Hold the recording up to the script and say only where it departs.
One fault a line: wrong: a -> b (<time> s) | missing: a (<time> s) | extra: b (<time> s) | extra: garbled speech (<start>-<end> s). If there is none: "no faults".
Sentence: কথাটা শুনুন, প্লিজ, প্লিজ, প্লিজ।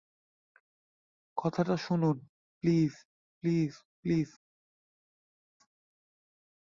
no faults